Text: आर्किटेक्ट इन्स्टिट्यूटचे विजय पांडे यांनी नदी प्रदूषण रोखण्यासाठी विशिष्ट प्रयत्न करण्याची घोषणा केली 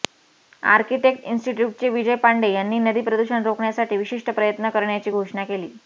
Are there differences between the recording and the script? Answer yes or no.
no